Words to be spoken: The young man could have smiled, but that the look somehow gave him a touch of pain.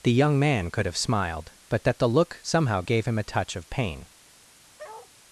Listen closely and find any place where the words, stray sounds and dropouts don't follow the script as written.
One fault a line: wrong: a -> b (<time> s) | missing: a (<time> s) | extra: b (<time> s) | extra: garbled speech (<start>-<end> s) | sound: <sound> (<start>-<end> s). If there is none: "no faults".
sound: bark (4.8-5.1 s)